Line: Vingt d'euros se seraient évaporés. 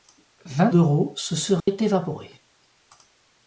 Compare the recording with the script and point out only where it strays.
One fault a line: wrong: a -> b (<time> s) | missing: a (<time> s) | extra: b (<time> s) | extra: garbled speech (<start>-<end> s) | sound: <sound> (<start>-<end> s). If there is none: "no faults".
sound: dropout (1.6-1.7 s)